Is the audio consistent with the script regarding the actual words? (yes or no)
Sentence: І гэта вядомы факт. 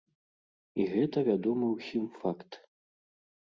no